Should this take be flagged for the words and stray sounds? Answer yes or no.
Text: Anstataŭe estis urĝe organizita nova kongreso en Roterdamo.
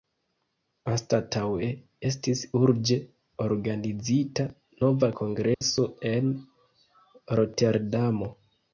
yes